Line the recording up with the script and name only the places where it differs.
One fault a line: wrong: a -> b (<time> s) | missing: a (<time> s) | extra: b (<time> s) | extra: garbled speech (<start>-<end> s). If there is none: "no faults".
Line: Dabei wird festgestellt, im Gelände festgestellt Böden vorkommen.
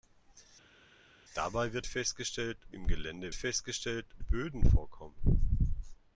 no faults